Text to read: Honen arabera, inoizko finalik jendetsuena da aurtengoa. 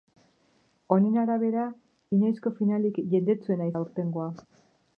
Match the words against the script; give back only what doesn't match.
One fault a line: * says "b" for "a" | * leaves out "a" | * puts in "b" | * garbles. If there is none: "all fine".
all fine